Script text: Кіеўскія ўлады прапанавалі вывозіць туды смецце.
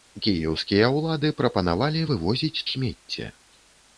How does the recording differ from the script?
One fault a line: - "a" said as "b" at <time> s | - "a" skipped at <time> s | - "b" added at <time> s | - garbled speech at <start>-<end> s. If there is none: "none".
- "туды" skipped at 2.6 s